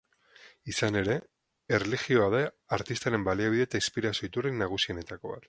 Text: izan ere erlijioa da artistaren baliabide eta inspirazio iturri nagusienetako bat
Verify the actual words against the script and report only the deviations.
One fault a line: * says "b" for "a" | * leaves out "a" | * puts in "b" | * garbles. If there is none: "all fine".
all fine